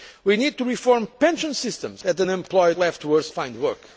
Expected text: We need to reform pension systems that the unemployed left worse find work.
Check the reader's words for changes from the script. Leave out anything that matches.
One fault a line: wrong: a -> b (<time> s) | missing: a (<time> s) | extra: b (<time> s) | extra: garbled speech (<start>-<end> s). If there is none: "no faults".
no faults